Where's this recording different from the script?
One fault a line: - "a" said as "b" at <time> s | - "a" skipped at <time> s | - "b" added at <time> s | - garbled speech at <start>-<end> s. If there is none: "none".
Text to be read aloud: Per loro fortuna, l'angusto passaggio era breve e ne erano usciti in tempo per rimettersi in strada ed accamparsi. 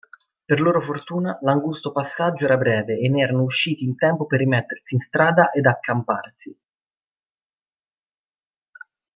none